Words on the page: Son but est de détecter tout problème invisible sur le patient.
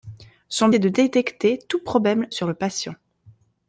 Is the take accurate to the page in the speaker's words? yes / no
no